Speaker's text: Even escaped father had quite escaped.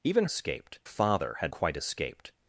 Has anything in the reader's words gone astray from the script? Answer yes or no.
no